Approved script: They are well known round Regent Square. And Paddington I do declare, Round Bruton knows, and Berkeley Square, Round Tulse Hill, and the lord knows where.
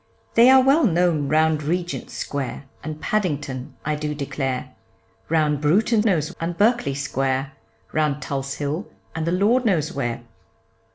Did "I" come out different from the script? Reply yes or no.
no